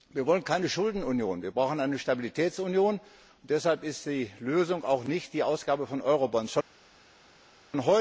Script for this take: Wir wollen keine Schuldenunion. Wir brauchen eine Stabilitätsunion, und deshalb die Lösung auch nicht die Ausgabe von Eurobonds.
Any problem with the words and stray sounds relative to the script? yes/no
yes